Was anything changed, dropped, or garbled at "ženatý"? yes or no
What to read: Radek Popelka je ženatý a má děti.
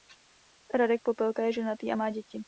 no